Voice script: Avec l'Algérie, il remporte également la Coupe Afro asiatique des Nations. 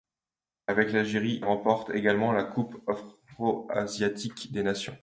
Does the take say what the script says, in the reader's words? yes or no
no